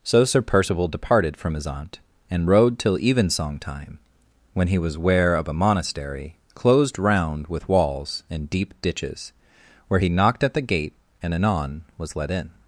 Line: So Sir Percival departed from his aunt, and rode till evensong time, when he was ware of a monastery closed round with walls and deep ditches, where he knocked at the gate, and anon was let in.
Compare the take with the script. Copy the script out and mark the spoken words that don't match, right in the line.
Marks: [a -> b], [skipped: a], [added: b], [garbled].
So Sir Percival departed from his aunt, and rode till evensong time, when he was ware of a monastery closed round with walls and deep ditches, where he knocked at the gate, and anon was let in.